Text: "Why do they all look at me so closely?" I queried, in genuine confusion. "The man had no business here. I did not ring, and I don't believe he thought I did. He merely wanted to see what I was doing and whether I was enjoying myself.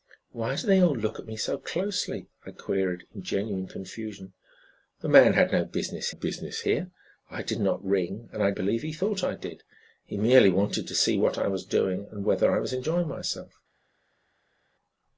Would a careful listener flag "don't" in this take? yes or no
yes